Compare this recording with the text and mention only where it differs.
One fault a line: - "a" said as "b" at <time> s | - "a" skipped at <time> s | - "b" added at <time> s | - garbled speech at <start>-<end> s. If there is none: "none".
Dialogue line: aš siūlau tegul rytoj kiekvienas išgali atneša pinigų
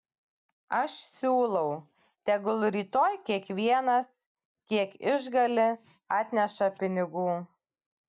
- "kiek" added at 4.7 s